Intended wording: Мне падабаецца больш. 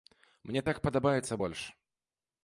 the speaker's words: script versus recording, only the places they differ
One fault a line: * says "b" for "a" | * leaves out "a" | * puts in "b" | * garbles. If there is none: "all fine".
* puts in "так"